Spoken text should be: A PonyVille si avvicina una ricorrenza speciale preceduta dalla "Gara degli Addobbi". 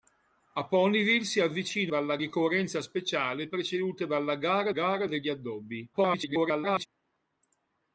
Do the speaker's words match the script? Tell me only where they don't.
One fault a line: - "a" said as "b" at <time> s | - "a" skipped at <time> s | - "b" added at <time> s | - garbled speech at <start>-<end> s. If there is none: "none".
- "una" said as "dalla" at 1.9 s
- "gara" added at 4.7 s
- garbled speech at 5.9-6.9 s